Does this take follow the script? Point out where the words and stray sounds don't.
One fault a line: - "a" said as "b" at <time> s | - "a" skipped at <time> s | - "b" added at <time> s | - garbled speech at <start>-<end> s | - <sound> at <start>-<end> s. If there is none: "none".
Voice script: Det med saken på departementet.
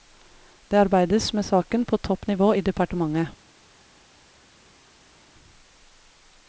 - "arbeides" added at 0.8 s
- "topp nivå i" added at 2.0 s